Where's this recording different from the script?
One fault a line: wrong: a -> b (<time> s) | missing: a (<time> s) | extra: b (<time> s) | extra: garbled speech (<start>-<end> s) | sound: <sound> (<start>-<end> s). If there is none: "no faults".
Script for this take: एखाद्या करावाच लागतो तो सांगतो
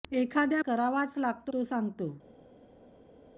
no faults